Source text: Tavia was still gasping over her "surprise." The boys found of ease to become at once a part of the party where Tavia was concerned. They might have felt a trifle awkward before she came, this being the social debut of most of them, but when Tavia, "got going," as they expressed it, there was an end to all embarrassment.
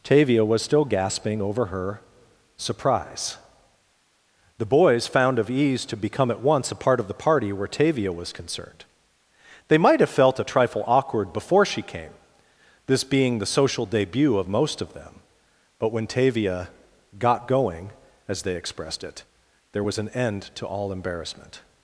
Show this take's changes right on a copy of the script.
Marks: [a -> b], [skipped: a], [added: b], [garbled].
Tavia was still gasping over her "surprise." The boys found of ease to become at once a part of the party where Tavia was concerned. They might have felt a trifle awkward before she came, this being the social debut of most of them, but when Tavia, "got going," as they expressed it, there was an end to all embarrassment.